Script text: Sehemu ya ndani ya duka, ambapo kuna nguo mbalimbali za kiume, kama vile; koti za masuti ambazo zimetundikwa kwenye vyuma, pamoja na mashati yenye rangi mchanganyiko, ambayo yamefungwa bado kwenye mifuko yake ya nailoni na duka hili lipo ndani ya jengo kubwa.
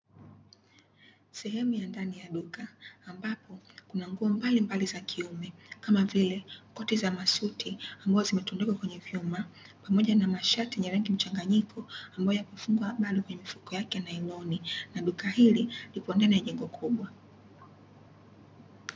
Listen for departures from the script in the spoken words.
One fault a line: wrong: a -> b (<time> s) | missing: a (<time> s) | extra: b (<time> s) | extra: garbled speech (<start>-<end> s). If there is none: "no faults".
no faults